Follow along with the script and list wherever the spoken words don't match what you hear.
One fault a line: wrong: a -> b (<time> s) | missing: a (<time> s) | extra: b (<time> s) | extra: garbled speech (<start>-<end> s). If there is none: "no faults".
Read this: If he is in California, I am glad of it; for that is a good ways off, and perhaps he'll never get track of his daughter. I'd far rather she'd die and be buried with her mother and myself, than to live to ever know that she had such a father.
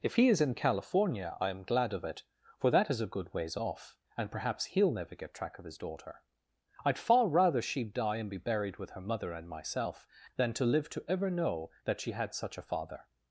no faults